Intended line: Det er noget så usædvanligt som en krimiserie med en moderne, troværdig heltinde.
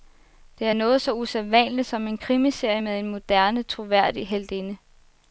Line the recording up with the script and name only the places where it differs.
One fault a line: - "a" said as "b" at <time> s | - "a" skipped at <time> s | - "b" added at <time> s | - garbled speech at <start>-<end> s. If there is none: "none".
none